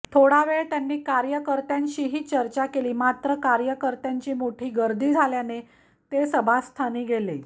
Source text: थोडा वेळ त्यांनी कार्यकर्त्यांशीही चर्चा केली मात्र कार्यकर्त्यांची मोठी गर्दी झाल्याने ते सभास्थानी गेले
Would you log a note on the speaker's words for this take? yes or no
no